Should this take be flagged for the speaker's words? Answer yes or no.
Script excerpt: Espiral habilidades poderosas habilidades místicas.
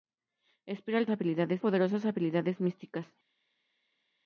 no